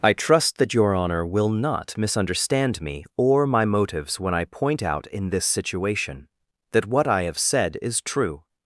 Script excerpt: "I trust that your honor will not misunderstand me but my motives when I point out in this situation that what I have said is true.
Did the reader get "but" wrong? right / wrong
wrong